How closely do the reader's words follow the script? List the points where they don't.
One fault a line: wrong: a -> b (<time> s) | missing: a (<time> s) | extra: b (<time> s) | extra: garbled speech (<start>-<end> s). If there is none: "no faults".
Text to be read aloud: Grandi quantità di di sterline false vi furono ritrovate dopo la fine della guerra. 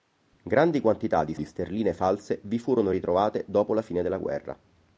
no faults